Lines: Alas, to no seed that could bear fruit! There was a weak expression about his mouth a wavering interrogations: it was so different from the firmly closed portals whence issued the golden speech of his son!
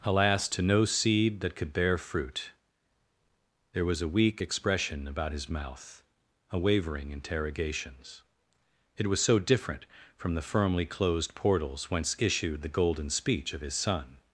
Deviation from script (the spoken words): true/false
false